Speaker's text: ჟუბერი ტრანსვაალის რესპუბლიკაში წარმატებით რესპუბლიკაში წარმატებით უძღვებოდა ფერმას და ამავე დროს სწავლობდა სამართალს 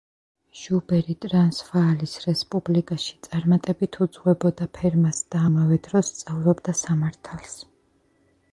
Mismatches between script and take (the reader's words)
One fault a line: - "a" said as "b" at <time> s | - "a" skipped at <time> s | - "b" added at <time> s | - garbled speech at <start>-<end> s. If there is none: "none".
- "რესპუბლიკაში წარმატებით" skipped at 4.0 s